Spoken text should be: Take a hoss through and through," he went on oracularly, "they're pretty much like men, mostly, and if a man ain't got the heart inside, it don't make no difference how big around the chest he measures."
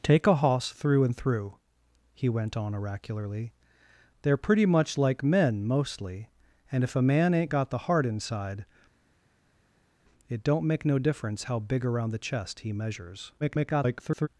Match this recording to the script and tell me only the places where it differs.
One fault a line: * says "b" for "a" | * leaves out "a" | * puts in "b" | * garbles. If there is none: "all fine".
* garbles